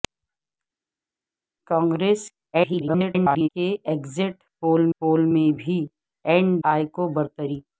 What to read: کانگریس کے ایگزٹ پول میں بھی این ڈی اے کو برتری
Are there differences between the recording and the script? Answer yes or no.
yes